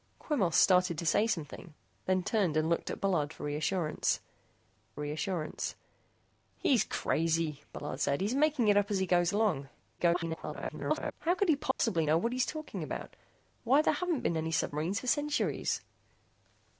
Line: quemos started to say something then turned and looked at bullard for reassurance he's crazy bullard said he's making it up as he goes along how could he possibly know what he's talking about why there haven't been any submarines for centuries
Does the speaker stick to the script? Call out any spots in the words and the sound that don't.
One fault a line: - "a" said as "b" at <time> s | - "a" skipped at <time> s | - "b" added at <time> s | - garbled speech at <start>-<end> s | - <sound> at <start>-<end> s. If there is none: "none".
- "reassurance" added at 5.0 s
- garbled speech at 10.0-11.1 s
- dropout at 11.7-11.8 s